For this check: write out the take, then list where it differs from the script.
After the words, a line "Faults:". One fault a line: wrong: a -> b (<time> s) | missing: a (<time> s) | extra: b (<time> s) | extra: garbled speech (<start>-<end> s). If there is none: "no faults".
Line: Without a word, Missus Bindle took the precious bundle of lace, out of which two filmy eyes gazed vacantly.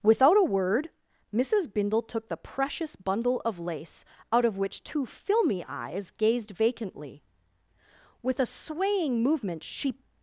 Without a word, Missus Bindle took the precious bundle of lace, out of which two filmy eyes gazed vacantly. With a swaying movement she
Faults:
extra: With a swaying movement she (8.2 s)